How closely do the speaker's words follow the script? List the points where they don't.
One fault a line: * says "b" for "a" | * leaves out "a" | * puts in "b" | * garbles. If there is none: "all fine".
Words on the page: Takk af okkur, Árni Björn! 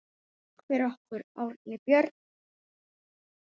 * says "fyrir" for "af"